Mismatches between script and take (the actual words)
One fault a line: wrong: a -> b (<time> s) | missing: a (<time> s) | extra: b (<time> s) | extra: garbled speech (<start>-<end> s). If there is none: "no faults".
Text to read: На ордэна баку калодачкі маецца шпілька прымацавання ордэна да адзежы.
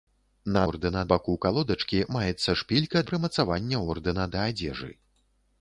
no faults